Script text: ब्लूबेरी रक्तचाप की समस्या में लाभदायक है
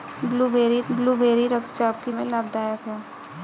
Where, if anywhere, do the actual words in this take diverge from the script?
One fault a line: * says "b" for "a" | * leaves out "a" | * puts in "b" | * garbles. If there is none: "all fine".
* puts in "ब्लूबेरी"
* leaves out "समस्या"